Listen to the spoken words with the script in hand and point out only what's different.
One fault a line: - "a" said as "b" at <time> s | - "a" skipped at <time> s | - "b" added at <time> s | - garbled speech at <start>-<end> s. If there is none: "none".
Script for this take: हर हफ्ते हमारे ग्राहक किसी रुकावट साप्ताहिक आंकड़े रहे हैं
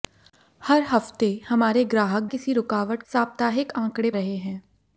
none